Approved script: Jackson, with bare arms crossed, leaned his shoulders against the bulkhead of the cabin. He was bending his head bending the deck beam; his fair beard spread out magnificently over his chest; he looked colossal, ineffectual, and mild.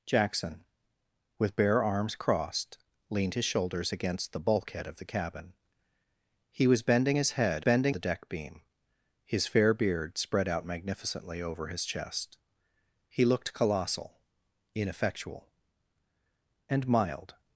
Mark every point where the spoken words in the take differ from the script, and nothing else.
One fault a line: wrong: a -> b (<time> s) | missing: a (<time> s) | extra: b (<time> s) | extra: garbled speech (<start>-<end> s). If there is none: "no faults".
no faults